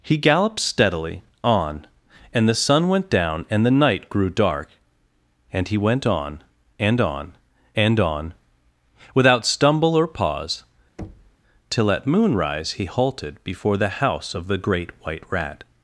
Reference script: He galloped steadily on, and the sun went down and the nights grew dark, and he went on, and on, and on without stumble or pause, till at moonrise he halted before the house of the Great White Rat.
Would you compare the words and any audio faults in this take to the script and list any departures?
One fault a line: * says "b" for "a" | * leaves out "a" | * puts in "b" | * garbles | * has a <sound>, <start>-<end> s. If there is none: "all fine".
* says "night" for "nights"
* has a thud, 11.0-11.4 s